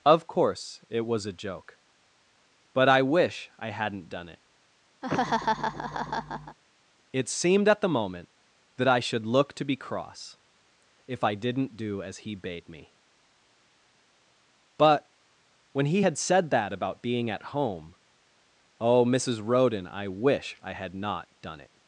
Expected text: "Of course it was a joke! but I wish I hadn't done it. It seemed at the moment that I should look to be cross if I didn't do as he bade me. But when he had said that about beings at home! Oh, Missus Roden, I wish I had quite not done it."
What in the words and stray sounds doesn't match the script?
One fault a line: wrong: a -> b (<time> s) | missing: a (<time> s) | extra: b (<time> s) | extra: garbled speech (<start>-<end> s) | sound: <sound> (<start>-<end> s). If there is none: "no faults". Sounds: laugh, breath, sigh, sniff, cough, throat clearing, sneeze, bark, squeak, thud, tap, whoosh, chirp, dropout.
sound: laugh (5.0-6.6 s)
wrong: beings -> being (17.0 s)
missing: quite (20.9 s)